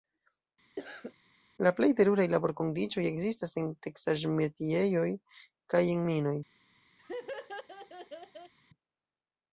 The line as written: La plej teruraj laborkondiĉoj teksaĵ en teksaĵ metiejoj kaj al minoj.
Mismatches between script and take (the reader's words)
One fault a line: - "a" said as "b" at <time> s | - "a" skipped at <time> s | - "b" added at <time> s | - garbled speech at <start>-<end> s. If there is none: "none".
- "teksaĵ" said as "ekzistas" at 3.1 s
- "al" said as "en" at 5.9 s